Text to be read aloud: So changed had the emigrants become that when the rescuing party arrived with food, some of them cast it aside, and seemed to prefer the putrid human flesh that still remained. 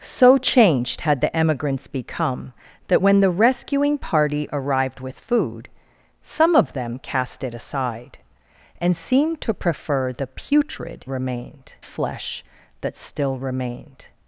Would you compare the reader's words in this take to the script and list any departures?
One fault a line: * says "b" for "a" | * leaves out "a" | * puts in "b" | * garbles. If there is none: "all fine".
* says "remained" for "human"